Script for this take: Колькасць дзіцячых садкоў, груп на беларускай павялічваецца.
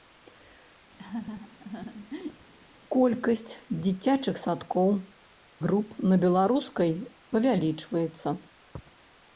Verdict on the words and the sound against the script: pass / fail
fail